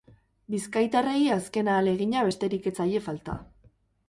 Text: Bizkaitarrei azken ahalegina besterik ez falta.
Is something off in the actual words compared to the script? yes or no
yes